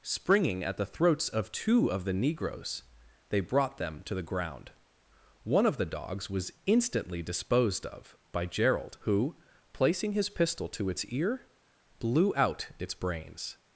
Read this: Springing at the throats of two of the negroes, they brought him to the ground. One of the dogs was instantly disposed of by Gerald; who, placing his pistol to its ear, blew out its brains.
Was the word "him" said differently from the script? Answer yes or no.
yes